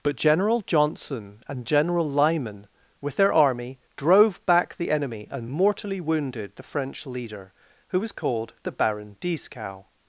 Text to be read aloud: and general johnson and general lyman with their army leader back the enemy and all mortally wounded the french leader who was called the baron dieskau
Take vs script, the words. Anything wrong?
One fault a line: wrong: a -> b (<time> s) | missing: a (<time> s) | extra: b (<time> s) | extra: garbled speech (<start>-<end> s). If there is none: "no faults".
wrong: and -> but (0.0 s)
wrong: leader -> drove (4.0 s)
missing: all (5.5 s)